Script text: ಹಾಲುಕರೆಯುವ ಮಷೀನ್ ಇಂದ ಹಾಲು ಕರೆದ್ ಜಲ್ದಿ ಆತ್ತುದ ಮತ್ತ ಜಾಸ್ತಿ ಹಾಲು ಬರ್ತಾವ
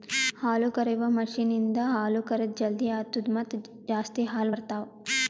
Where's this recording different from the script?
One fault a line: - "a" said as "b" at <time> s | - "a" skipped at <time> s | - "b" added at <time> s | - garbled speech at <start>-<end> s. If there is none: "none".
none